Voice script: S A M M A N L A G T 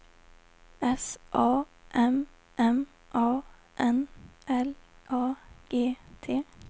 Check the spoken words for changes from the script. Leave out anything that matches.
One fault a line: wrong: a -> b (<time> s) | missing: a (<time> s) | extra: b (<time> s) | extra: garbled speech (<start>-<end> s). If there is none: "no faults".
no faults